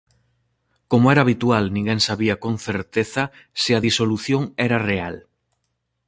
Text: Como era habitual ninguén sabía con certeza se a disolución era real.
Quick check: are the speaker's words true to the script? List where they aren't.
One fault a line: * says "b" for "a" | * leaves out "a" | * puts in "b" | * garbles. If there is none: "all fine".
all fine